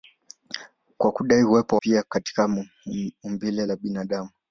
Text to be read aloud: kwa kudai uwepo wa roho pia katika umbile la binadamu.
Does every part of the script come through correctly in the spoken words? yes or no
no